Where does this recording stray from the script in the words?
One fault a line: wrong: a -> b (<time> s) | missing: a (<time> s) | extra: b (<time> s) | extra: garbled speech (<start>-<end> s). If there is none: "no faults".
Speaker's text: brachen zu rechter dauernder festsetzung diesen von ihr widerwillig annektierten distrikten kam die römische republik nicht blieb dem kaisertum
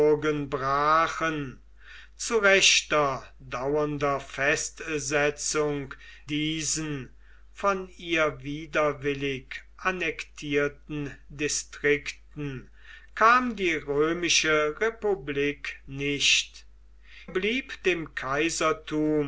no faults